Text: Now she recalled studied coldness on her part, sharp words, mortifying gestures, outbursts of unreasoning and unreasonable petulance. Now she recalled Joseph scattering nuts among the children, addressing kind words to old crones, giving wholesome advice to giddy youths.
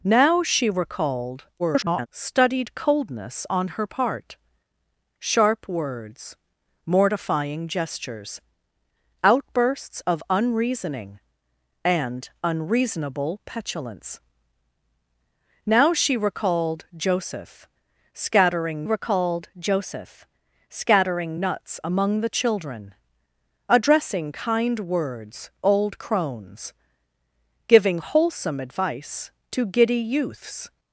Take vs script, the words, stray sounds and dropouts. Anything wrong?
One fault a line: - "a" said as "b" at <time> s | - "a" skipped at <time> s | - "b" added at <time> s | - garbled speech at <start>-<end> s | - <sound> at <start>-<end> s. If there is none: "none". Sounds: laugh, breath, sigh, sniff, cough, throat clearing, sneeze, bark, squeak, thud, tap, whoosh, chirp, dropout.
- garbled speech at 1.6-2.1 s
- "recalled Joseph scattering" added at 18.8 s
- "to" skipped at 25.5 s